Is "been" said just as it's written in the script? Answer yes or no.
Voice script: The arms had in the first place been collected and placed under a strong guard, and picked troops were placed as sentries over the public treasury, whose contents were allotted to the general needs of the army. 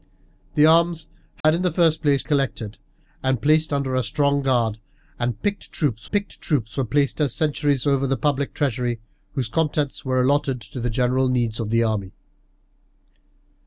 no